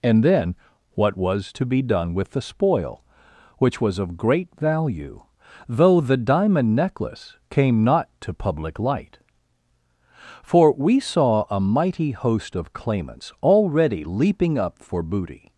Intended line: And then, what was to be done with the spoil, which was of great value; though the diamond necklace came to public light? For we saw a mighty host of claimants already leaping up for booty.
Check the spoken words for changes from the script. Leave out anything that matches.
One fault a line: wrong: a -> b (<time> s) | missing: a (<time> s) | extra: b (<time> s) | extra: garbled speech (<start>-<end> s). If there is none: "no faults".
extra: not (7.8 s)